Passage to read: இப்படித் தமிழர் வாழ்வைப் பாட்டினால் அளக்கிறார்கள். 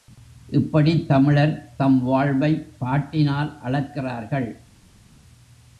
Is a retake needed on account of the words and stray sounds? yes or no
yes